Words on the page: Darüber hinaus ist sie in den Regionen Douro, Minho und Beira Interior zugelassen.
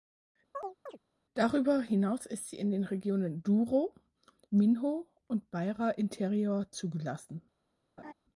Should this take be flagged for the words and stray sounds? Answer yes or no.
yes